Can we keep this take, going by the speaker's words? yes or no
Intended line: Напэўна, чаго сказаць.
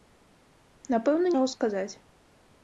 yes